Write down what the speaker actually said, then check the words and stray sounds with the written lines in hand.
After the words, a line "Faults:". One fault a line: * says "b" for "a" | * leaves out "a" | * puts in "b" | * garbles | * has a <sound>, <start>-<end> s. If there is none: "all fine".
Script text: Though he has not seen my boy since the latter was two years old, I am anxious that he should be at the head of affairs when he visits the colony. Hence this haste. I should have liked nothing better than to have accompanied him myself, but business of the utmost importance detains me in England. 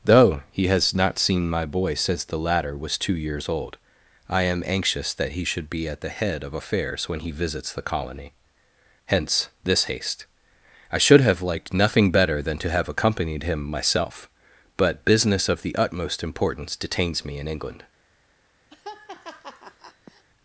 Though he has not seen my boy since the latter was two years old, I am anxious that he should be at the head of affairs when he visits the colony. Hence this haste. I should have liked nothing better than to have accompanied him myself, but business of the utmost importance detains me in England.
Faults:
* has a laugh, 18.7-20.2 s